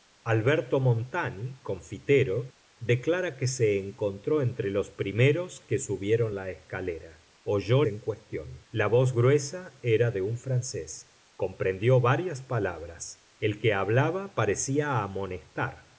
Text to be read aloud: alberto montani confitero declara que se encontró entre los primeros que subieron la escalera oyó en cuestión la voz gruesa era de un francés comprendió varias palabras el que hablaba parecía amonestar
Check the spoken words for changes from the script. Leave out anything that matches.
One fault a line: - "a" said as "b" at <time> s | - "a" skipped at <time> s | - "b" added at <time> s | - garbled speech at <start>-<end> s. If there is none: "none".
none